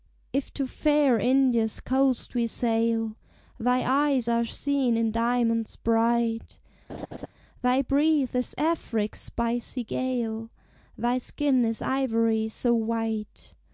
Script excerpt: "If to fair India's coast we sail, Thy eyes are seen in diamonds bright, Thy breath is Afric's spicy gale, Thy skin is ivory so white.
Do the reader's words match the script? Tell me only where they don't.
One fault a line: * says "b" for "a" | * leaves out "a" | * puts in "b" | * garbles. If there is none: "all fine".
all fine